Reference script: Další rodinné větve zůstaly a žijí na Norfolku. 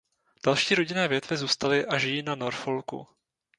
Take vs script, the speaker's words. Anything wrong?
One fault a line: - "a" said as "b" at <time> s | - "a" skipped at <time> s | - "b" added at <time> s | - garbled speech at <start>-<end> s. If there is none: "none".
none